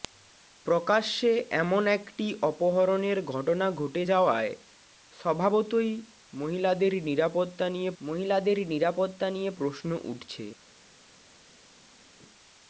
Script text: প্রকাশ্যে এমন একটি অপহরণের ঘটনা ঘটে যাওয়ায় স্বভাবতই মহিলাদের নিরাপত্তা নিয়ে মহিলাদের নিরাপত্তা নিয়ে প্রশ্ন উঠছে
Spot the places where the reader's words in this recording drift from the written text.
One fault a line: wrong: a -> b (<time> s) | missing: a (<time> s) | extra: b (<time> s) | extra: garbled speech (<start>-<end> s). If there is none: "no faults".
no faults